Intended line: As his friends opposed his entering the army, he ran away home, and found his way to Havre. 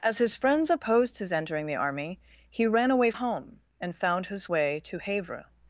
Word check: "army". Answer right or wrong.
right